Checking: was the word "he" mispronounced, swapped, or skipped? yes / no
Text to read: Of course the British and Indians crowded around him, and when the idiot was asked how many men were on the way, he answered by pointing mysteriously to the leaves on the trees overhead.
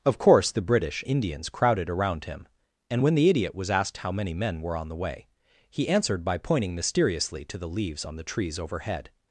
no